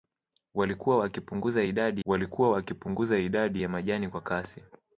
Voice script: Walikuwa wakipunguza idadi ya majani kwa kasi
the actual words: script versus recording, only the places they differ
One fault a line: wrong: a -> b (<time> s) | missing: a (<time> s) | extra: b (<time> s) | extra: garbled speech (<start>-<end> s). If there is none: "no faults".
extra: walikuwa wakipunguza idadi (2.0 s)